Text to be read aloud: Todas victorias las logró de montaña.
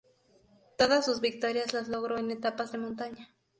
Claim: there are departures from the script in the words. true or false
true